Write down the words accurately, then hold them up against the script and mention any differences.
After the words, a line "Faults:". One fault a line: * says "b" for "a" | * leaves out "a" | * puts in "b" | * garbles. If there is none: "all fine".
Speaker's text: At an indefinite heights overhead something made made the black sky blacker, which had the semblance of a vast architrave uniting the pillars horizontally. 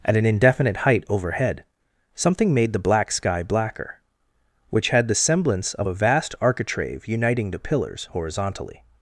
At an indefinite height overhead something made the black sky blacker, which had the semblance of a vast architrave uniting the pillars horizontally.
Faults:
* says "height" for "heights"
* leaves out "made"